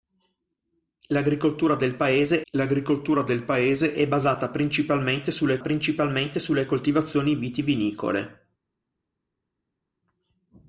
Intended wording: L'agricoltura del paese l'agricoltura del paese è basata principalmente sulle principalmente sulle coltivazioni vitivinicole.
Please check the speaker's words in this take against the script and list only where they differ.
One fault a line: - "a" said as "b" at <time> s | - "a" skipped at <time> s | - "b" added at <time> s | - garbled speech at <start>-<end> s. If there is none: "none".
none